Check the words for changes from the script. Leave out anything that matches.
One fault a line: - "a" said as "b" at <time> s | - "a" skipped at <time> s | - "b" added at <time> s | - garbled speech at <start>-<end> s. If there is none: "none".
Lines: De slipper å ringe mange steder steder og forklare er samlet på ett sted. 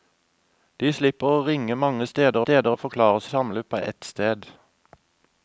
none